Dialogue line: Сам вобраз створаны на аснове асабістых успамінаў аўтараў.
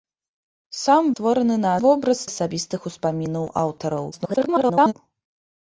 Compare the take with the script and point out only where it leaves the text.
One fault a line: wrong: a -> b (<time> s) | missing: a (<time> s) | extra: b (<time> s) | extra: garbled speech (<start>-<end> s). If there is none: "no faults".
missing: вобраз (1.1 s)
wrong: аснове -> вобраз (1.8 s)
extra: garbled speech (4.1-4.9 s)